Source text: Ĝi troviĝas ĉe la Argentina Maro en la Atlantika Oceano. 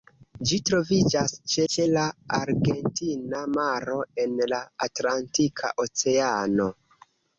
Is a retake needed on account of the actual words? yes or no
yes